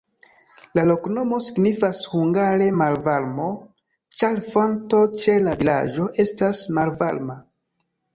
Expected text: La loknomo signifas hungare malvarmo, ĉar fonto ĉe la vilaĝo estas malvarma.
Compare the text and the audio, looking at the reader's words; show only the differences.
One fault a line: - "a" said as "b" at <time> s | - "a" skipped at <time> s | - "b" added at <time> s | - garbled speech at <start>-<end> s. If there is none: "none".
none